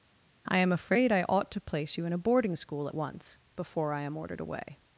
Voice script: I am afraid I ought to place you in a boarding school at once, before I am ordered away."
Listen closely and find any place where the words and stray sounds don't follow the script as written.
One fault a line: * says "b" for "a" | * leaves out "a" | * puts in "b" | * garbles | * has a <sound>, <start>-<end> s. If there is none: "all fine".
all fine